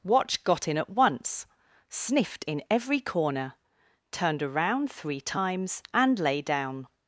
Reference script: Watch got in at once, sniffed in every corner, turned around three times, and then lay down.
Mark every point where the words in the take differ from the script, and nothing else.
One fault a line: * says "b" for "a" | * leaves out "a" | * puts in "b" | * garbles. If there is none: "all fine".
* leaves out "then"